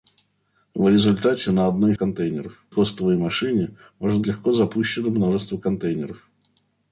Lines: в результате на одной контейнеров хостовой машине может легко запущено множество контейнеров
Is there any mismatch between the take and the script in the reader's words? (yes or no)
no